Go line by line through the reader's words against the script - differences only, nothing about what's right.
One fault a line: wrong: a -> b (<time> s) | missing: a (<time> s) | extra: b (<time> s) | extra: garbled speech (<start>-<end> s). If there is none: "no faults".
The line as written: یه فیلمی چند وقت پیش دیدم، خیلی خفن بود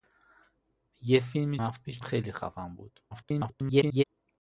missing: چند (1.6 s)
missing: دیدم (2.0 s)
extra: garbled speech (3.1-4.0 s)